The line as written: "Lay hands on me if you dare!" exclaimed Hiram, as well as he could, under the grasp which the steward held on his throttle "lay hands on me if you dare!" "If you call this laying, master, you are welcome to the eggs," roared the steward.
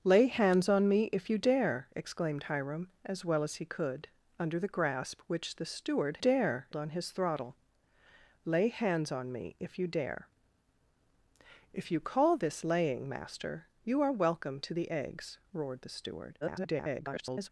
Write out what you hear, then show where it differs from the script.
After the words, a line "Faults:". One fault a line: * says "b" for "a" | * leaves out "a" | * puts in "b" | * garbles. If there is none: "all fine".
"Lay hands on me if you dare!" exclaimed Hiram, as well as he could, under the grasp which the steward dare on his throttle "lay hands on me if you dare!" "If you call this laying, master, you are welcome to the eggs," roared the steward. [garbled]
Faults:
* says "dare" for "held"
* garbles